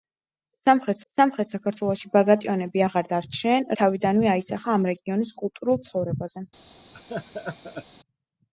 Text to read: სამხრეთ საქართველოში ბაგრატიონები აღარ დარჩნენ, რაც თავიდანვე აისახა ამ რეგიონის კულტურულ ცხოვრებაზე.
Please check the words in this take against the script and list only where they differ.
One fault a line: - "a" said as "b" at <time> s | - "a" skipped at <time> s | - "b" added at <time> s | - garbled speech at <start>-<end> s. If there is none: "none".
- "სამხრეთ" added at 1.1 s
- "რაც" skipped at 3.7 s